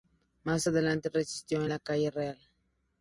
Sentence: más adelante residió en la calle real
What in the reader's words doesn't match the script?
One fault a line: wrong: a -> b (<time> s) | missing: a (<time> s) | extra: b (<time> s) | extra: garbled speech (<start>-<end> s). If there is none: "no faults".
no faults